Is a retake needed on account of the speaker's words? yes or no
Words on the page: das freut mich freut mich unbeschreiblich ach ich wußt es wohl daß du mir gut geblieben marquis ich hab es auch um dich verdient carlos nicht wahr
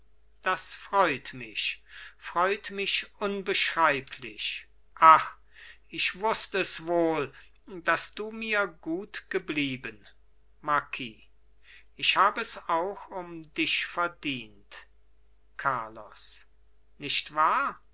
no